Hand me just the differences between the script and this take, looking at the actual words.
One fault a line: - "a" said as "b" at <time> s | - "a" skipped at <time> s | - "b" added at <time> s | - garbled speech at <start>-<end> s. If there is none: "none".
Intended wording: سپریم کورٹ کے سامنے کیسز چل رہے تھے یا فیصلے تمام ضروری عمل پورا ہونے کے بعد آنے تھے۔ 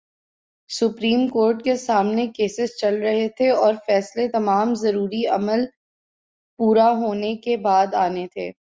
- "یا" said as "اور" at 3.5 s